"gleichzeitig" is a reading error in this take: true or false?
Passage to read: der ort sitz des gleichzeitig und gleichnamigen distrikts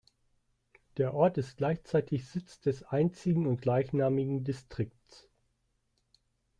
true